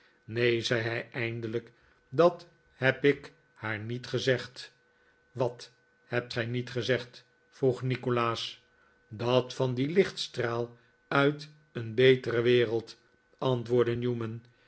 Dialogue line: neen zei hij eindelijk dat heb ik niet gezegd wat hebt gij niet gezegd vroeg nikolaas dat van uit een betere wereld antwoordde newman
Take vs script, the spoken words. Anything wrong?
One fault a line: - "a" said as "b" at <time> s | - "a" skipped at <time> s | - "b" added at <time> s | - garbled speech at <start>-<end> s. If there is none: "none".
- "haar" added at 3.5 s
- "dien lichtstraal" added at 9.7 s